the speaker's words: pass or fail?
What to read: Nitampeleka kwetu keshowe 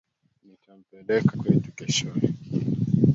pass